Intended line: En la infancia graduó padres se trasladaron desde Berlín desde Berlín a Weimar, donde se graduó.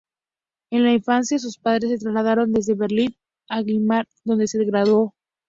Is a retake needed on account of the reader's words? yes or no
yes